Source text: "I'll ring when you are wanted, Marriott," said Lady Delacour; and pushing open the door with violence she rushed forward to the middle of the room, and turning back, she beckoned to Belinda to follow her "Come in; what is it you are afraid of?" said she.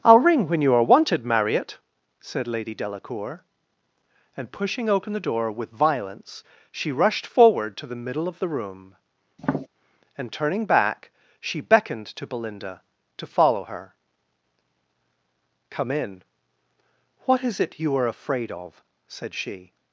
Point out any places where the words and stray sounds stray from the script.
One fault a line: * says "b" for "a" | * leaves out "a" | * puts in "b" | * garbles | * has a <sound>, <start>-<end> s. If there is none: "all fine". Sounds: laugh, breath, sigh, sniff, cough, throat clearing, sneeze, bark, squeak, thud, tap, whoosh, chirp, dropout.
* has a tap, 9.4-9.7 s